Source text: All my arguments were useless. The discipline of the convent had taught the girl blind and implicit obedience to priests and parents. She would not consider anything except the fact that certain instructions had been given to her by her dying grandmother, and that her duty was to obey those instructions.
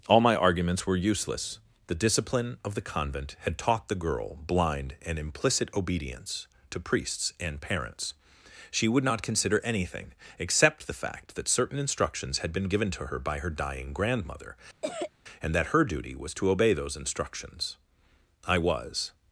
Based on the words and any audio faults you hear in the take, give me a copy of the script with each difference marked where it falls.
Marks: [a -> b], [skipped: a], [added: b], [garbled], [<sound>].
All my arguments were useless. The discipline of the convent had taught the girl blind and implicit obedience to priests and parents. She would not consider anything except the fact that certain instructions had been given to her by her dying grandmother, [cough] and that her duty was to obey those instructions. [added: I was]